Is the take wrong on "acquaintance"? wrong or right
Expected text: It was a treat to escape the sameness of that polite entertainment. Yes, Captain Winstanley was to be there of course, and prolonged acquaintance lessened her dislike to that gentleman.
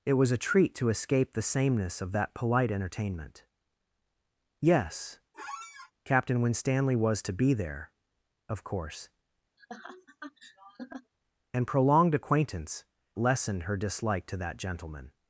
right